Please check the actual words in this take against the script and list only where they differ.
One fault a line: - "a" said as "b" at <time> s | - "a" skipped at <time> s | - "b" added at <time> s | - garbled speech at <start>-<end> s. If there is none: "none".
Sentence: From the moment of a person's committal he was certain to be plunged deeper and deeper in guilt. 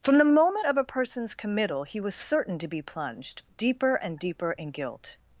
none